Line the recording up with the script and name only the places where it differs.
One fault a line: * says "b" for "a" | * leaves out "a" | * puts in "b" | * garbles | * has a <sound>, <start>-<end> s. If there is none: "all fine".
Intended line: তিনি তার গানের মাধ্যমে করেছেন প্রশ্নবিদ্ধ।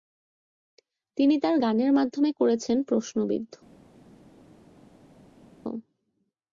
all fine